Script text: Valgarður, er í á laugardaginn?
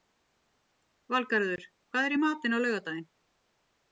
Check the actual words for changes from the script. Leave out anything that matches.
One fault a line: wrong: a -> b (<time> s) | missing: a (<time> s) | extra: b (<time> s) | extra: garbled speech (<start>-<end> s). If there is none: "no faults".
extra: hvað (1.9 s)
extra: matinn (2.3 s)